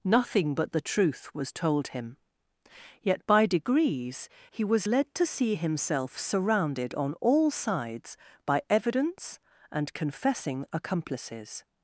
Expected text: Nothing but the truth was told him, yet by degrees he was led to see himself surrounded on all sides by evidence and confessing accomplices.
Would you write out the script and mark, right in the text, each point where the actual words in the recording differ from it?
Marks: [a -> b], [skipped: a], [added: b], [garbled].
Nothing but the truth was told him, yet by degrees he was led to see himself surrounded on all sides by evidence and confessing accomplices.